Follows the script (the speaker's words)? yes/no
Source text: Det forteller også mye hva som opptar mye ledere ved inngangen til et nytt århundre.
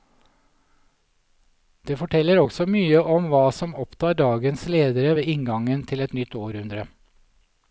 no